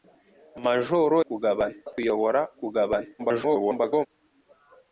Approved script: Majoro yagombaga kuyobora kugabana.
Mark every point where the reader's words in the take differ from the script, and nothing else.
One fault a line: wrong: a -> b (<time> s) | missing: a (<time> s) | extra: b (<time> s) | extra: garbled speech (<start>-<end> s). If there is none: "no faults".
wrong: yagombaga -> kugabana (1.3 s)
extra: garbled speech (3.2-4.1 s)